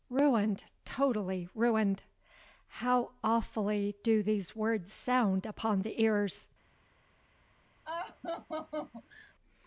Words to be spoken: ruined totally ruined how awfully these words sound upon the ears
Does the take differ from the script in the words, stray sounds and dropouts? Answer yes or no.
yes